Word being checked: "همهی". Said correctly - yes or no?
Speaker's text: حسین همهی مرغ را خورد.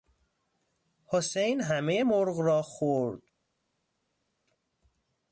yes